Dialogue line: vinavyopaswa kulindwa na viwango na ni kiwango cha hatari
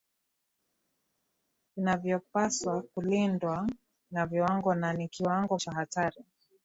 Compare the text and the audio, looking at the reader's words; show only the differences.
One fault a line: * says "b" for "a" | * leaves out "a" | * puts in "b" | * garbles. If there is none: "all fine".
all fine